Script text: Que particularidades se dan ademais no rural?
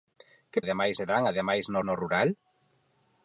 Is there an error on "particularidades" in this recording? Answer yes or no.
yes